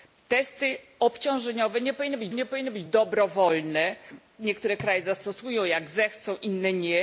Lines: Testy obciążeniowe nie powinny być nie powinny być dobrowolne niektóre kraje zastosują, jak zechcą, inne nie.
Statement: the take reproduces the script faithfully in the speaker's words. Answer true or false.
true